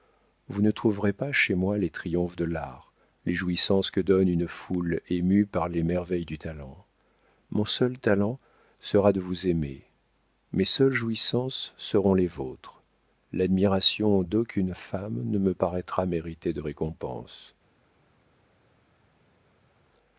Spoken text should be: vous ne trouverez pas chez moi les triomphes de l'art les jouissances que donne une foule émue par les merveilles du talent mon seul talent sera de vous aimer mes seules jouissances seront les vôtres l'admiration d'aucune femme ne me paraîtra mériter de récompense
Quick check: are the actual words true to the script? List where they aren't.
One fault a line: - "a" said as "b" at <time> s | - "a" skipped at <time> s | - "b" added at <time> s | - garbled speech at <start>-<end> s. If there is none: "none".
none